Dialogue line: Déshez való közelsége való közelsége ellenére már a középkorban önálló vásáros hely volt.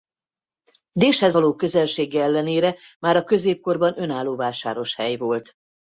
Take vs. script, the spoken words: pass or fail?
fail